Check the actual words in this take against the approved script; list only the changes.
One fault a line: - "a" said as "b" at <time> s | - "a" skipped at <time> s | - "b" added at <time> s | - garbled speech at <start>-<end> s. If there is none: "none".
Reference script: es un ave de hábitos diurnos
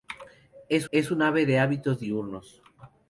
- "es" added at 0.9 s